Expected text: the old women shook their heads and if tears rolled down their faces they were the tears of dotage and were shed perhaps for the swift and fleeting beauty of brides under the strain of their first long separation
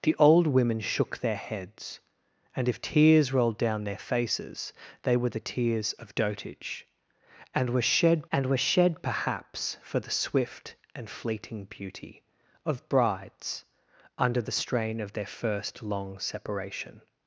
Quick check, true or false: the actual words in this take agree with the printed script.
false